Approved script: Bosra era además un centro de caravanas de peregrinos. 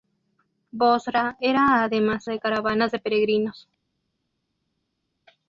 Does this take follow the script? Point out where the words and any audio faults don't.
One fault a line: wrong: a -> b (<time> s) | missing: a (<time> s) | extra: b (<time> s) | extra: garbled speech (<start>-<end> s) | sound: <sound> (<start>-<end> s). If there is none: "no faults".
missing: un centro (2.3 s)